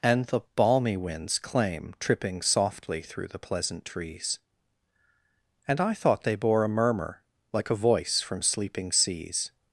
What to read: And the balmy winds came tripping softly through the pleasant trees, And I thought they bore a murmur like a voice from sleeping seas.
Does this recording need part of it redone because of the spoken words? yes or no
yes